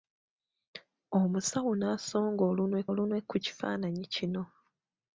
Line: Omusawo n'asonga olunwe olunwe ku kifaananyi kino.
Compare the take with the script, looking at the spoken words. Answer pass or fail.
pass